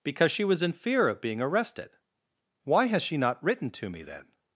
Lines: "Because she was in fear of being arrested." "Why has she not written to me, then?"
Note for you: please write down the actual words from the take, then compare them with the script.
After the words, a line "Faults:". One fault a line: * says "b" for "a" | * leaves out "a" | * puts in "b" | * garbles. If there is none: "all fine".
"Because she was in fear of being arrested." "Why has she not written to me, then?"
Faults:
all fine